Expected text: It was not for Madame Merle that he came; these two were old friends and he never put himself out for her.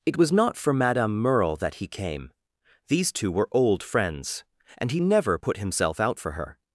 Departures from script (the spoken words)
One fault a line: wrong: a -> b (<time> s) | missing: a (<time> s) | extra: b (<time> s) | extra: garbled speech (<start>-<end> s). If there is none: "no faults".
no faults